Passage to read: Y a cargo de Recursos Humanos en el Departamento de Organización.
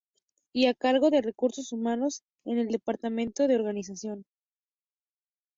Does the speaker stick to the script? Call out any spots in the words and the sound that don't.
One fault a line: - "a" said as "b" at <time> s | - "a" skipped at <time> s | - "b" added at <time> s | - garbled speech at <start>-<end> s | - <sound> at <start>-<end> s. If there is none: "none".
none